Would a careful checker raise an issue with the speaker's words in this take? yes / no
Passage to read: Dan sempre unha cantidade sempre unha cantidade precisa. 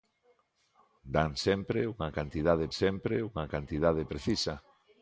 no